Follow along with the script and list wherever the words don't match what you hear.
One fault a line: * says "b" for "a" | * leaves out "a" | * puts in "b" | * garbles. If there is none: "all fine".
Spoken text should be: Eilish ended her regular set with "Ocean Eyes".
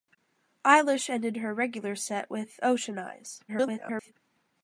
* garbles